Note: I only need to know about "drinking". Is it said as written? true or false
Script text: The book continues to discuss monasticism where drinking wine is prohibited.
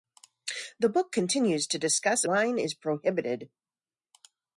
false